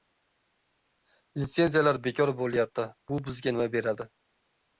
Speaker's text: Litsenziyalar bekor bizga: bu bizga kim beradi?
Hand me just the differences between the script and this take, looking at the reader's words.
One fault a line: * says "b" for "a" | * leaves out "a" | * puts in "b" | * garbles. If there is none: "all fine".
* says "bo‘lyapti" for "bizga"
* says "nima" for "kim"